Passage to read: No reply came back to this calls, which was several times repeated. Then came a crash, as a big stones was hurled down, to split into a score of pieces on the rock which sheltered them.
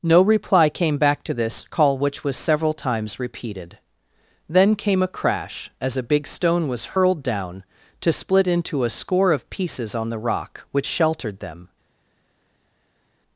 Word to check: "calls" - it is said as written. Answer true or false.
false